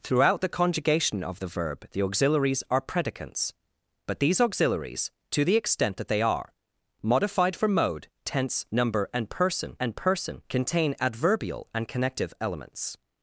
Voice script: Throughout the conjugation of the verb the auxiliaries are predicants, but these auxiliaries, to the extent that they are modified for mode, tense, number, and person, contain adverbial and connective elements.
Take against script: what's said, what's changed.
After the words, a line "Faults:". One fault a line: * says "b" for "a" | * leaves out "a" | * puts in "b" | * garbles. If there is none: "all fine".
Throughout the conjugation of the verb the auxiliaries are predicants, but these auxiliaries, to the extent that they are modified for mode, tense, number, and person and person, contain adverbial and connective elements.
Faults:
* puts in "and person"